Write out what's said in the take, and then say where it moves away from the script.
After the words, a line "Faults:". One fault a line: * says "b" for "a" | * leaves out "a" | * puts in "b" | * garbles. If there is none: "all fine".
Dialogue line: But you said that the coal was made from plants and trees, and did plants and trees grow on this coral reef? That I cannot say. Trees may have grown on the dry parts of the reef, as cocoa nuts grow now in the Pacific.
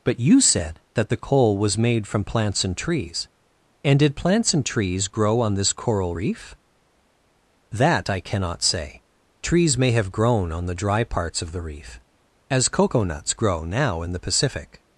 But you said that the coal was made from plants and trees, and did plants and trees grow on this coral reef? That I cannot say. Trees may have grown on the dry parts of the reef, as cocoa nuts grow now in the Pacific.
Faults:
all fine